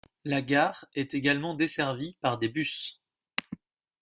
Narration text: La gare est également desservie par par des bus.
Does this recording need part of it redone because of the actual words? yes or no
yes